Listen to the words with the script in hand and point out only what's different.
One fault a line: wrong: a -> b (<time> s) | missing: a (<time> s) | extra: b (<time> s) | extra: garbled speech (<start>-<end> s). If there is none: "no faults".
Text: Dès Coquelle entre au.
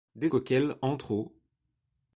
no faults